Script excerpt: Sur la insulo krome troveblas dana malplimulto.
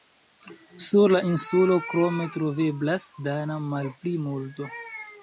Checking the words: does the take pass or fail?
pass